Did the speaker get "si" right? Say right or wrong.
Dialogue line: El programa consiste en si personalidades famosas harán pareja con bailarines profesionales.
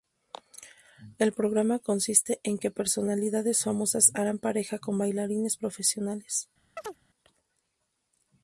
wrong